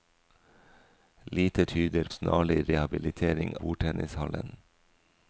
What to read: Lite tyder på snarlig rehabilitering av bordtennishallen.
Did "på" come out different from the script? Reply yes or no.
yes